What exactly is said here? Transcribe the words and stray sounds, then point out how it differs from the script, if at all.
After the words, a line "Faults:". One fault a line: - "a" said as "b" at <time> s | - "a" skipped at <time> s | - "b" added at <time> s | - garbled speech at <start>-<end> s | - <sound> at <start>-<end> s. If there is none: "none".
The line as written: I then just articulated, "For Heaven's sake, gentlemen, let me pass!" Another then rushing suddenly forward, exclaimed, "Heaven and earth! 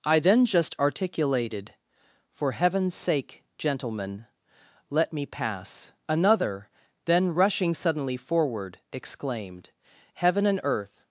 I then just articulated, "For Heaven's sake, gentlemen, let me pass!" Another then rushing suddenly forward, exclaimed, "Heaven and earth!
Faults:
none